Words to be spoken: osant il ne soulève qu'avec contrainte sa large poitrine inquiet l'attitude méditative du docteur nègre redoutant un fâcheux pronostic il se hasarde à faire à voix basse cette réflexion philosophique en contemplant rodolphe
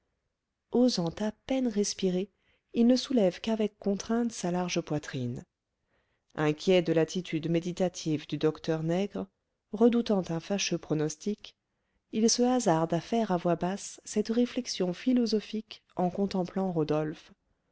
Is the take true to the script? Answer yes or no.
no